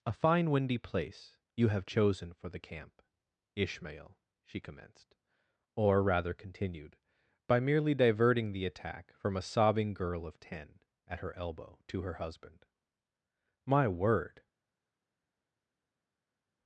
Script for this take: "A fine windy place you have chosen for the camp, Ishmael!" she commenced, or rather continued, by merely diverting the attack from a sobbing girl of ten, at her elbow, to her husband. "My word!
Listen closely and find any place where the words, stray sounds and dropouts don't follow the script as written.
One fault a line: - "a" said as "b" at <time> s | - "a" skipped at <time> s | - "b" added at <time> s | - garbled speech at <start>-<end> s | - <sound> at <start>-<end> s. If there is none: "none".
none